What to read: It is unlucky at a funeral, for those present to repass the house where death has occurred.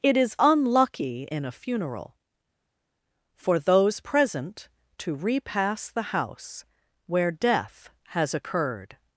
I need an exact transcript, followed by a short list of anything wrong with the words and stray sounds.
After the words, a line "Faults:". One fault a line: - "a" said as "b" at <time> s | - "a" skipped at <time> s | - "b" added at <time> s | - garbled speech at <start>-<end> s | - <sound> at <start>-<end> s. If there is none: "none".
It is unlucky in a funeral, for those present to repass the house where death has occurred.
Faults:
- "at" said as "in" at 1.3 s